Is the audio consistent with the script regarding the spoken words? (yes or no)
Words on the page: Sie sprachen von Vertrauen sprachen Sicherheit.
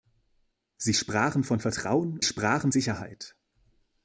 yes